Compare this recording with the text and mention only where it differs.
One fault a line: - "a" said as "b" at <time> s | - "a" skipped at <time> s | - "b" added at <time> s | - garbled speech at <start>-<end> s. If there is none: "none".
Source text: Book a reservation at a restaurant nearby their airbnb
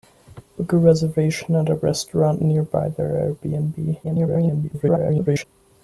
- garbled speech at 4.0-5.4 s